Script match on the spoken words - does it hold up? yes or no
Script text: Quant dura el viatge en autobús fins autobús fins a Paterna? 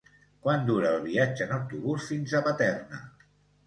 no